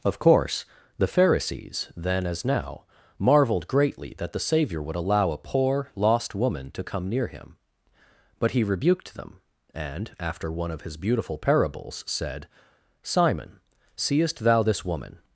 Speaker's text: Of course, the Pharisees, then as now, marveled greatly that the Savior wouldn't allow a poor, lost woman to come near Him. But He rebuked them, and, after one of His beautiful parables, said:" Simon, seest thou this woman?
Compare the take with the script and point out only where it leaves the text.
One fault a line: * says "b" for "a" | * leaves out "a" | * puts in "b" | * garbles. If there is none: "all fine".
* says "would" for "wouldn't"